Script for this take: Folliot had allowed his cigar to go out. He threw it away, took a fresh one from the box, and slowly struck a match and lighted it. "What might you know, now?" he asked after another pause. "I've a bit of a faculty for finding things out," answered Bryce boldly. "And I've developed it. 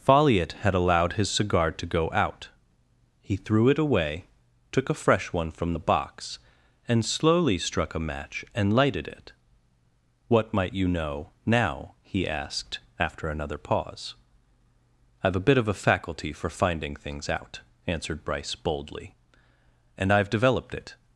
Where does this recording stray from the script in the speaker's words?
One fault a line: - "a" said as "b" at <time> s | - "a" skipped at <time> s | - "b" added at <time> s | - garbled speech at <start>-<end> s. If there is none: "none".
none